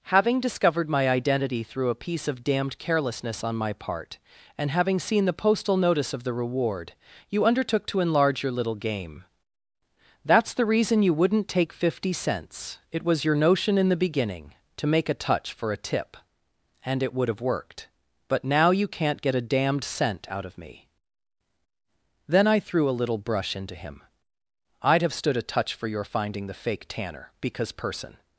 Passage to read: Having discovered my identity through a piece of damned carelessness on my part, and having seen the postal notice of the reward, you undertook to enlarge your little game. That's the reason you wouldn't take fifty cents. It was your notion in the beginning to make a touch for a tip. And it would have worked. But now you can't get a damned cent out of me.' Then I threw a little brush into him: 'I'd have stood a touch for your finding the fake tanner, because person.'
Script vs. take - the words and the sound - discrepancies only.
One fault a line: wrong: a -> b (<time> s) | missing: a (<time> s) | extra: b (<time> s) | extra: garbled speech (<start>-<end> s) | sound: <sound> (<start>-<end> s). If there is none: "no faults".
no faults